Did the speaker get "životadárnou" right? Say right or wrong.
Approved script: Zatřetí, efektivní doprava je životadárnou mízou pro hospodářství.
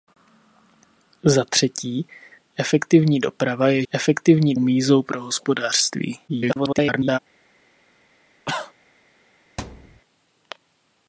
wrong